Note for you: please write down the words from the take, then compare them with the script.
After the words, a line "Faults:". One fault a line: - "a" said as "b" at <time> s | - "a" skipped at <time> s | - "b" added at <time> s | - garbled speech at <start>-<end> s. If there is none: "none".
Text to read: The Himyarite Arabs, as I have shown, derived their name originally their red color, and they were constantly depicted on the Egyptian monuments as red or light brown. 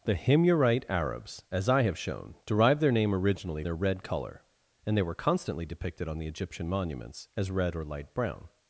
The Himyarite Arabs, as I have shown, derived their name originally their red color, and they were constantly depicted on the Egyptian monuments as red or light brown.
Faults:
none